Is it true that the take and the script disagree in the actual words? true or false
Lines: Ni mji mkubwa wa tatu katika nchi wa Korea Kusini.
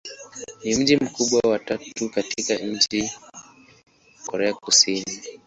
true